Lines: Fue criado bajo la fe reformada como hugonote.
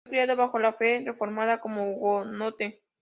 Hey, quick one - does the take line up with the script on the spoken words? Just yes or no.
yes